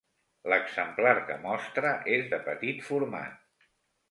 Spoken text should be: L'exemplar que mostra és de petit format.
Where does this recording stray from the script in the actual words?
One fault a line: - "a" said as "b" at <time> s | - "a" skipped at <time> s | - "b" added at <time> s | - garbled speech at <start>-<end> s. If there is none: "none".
none